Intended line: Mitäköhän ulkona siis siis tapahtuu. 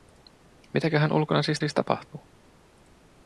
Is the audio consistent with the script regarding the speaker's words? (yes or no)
yes